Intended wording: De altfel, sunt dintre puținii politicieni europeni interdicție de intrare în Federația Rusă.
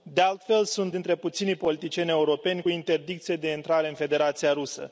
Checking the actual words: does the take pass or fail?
pass